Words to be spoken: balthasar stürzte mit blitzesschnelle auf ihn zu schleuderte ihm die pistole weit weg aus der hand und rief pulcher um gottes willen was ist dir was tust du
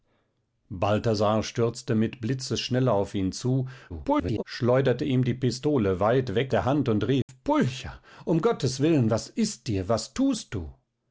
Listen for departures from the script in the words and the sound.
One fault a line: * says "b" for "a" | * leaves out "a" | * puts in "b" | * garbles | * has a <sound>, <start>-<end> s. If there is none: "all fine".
* garbles
* leaves out "aus"
* has a dropout, 7.2-7.3 s